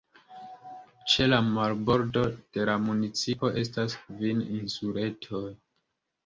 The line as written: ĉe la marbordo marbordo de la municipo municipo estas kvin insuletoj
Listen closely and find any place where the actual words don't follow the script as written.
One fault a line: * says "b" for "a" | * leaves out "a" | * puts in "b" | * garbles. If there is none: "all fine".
* leaves out "marbordo"
* leaves out "municipo"